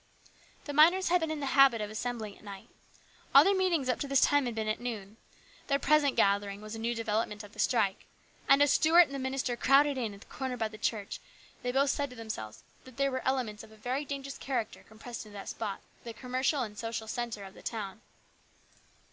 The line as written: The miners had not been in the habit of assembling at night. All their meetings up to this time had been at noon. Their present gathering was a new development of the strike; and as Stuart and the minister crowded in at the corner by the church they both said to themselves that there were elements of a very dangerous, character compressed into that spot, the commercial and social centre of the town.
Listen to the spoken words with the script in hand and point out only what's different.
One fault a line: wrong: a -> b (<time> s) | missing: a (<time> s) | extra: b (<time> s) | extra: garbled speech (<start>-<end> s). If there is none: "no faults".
missing: not (1.2 s)